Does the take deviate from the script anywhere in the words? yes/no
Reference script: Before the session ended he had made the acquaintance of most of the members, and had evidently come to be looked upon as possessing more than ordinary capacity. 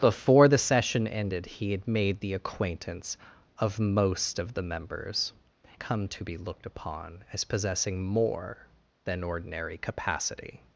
yes